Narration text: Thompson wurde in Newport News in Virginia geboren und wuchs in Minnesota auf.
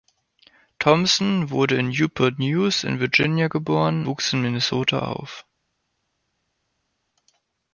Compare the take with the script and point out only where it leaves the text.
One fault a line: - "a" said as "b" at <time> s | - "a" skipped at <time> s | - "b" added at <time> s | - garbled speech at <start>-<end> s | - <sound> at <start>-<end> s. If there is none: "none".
- "und" skipped at 4.1 s